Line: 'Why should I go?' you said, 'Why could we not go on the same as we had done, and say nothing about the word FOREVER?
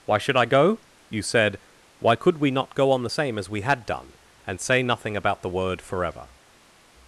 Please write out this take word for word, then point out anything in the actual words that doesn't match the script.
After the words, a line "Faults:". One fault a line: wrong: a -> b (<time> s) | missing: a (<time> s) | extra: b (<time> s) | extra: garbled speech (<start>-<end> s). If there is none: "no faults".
'Why should I go?' you said, 'Why could we not go on the same as we had done, and say nothing about the word FOREVER?
Faults:
no faults